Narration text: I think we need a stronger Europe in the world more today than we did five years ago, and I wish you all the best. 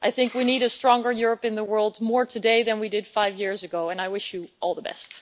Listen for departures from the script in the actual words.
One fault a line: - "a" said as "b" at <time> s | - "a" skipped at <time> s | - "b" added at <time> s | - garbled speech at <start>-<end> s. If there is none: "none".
none